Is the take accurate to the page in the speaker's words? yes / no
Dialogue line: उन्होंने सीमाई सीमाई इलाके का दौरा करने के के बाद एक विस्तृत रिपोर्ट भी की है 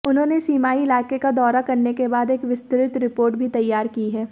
no